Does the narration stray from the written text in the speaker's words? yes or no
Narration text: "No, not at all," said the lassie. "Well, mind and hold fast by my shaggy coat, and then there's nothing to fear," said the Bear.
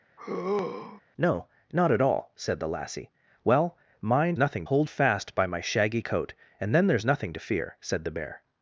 yes